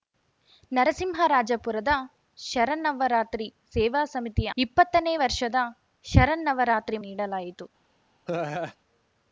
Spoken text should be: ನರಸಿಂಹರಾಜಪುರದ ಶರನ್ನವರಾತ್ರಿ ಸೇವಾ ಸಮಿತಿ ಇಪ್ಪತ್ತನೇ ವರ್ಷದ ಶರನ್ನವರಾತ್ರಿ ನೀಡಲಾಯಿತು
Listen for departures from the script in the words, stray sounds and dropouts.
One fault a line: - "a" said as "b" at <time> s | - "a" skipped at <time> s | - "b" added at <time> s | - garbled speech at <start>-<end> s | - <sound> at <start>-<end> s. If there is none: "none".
- laugh at 8.3-8.8 s